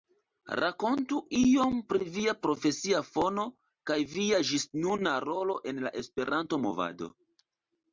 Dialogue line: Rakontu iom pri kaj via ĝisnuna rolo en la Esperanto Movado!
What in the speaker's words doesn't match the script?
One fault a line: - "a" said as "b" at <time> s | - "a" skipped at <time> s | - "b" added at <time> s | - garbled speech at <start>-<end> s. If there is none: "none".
- "via profesia fono" added at 2.1 s